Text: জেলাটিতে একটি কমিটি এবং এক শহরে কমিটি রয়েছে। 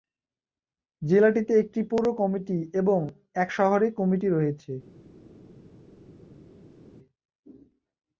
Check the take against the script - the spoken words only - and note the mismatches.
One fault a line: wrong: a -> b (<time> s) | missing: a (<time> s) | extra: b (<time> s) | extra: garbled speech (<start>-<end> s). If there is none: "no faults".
extra: পৌর (1.9 s)